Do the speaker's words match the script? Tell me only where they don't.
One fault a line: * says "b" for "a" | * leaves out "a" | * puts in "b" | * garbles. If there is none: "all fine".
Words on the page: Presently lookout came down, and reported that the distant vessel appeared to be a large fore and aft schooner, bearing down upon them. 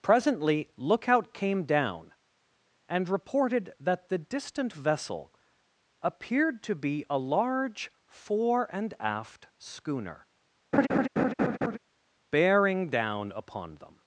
all fine